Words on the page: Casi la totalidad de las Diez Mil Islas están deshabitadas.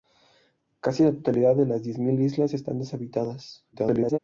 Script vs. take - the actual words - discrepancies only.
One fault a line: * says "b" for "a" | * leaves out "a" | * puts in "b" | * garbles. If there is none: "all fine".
* garbles